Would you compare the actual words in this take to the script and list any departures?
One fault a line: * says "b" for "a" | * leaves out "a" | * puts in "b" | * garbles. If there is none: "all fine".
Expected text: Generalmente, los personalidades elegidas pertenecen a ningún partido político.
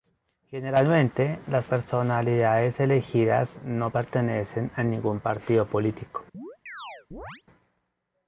* says "las" for "los"
* puts in "no"